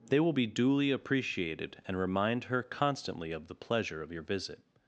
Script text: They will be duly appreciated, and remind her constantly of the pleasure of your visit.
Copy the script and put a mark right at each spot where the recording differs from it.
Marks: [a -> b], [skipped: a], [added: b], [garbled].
They will be duly appreciated, and remind her constantly of the pleasure of your visit.